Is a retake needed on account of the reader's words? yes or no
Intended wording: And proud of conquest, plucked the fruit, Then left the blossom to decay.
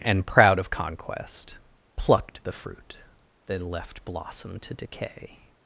yes